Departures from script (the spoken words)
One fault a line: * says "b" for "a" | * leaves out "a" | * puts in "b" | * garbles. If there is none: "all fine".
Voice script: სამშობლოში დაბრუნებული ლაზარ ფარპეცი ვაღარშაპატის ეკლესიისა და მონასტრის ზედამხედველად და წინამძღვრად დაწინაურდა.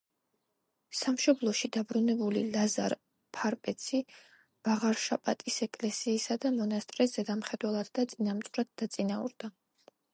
all fine